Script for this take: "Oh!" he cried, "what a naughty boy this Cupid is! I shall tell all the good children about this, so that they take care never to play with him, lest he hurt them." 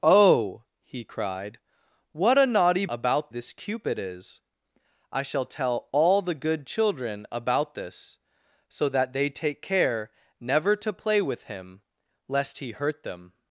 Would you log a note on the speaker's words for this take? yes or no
yes